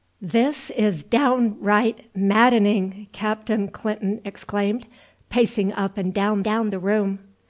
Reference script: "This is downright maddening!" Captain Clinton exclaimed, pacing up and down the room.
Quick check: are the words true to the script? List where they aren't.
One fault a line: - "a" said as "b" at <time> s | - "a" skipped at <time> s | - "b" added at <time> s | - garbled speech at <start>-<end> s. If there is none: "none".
- "down" added at 6.4 s